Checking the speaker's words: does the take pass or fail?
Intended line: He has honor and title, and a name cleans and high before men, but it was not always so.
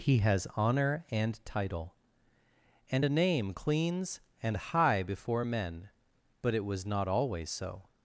pass